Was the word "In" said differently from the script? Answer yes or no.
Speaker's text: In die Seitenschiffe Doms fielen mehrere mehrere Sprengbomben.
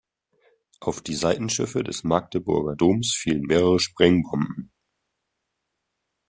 yes